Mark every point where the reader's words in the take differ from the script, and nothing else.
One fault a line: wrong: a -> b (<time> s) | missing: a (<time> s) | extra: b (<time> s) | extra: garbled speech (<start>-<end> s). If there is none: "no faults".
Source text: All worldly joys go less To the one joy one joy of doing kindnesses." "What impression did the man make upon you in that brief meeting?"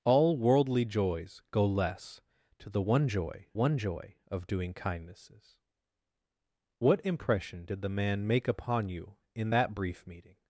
no faults